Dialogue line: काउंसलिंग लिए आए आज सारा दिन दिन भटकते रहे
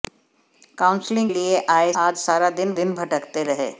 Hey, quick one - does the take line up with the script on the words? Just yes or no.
yes